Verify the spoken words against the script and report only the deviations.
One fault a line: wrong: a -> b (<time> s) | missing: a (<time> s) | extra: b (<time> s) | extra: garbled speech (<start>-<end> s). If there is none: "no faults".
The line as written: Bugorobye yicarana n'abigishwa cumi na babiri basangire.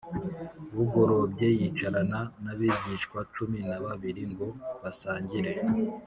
extra: ngo (4.3 s)